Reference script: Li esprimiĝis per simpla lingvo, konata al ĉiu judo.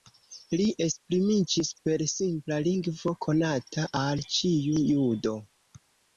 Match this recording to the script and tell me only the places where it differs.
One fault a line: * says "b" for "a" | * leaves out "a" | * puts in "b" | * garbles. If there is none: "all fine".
all fine